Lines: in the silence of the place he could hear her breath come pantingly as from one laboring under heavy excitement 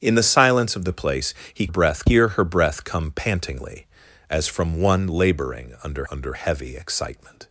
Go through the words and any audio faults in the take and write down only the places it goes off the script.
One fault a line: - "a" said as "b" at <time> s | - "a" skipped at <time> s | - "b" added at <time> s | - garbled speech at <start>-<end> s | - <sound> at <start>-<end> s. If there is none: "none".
- "could" said as "breath" at 1.7 s
- "under" added at 6.1 s